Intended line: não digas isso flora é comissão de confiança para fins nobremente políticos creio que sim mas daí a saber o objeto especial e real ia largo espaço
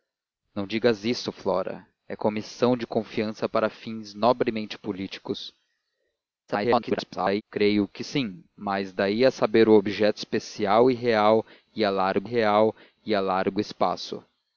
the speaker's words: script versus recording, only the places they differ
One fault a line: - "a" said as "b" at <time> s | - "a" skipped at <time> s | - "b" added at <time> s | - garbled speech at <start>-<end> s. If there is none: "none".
- garbled speech at 6.5-7.4 s
- "real ia largo" added at 12.2 s